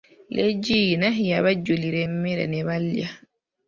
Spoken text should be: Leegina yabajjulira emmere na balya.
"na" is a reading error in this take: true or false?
true